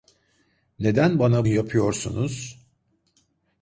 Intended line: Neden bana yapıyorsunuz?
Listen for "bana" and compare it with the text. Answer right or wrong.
right